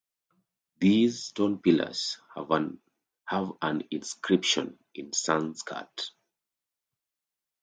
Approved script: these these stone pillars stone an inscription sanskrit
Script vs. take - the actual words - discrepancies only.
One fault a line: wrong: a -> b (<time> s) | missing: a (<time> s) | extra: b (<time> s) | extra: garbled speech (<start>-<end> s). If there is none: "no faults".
missing: these (1.2 s)
wrong: stone -> have (2.4 s)
extra: in (5.0 s)